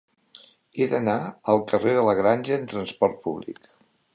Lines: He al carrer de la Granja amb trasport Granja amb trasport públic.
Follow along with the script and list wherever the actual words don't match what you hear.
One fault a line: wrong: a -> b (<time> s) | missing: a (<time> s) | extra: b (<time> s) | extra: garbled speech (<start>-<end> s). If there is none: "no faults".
extra: d'anar (0.9 s)
missing: Granja amb trasport (3.2 s)